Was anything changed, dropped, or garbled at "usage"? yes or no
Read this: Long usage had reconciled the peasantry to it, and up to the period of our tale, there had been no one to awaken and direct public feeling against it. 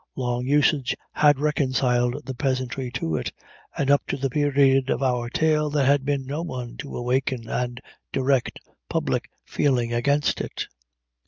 no